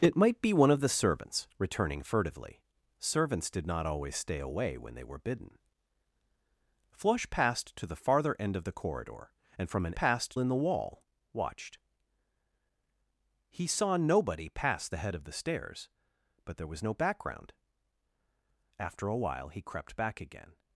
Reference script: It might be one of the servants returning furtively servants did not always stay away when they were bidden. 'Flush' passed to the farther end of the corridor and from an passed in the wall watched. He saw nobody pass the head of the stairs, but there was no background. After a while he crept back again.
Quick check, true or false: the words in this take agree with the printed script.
true